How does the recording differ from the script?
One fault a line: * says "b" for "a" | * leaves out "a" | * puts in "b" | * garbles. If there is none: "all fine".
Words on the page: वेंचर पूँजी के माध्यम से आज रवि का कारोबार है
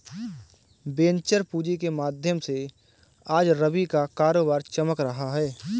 * puts in "चमक रहा"